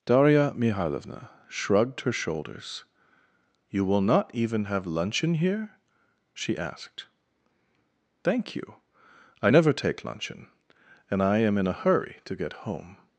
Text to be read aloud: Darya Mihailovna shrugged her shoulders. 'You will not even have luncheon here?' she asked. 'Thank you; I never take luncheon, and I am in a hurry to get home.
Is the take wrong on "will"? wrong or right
right